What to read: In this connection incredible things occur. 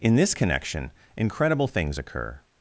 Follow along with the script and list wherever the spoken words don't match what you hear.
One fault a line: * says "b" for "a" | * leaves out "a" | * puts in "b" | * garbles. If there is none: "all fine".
all fine